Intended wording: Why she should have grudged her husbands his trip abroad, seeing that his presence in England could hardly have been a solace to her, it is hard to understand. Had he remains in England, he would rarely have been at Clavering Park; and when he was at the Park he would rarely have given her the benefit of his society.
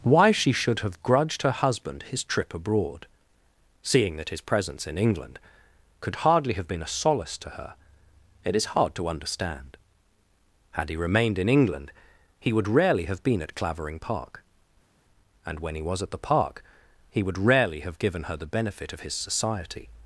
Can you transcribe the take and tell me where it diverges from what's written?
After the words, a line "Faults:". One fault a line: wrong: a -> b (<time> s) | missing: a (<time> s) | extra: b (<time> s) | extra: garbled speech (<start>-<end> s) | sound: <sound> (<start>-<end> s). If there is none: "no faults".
Why she should have grudged her husband his trip abroad, seeing that his presence in England could hardly have been a solace to her, it is hard to understand. Had he remained in England, he would rarely have been at Clavering Park; and when he was at the Park he would rarely have given her the benefit of his society.
Faults:
wrong: husbands -> husband (1.5 s)
wrong: remains -> remained (10.9 s)